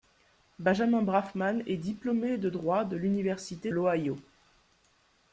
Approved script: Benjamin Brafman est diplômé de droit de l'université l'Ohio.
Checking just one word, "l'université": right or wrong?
right